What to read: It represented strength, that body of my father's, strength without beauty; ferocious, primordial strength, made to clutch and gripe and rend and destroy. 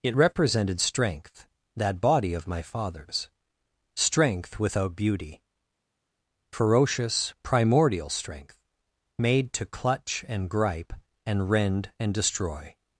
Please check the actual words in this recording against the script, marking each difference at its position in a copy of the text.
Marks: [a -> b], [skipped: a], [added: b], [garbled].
It represented strength, that body of my father's, strength without beauty; ferocious, primordial strength, made to clutch and gripe and rend and destroy.